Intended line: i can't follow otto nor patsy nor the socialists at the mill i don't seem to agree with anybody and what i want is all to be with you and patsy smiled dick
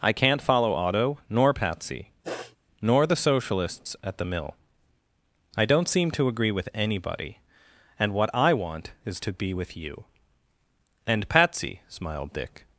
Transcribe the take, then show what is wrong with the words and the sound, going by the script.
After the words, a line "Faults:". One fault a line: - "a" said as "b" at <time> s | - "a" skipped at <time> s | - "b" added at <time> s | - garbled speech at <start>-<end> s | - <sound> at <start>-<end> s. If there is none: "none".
i can't follow otto nor patsy nor the socialists at the mill i don't seem to agree with anybody and what i want is to be with you and patsy smiled dick
Faults:
- sniff at 2.2-2.6 s
- "all" skipped at 9.2 s